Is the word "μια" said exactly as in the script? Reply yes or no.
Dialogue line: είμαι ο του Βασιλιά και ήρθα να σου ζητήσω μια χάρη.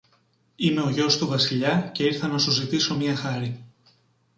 yes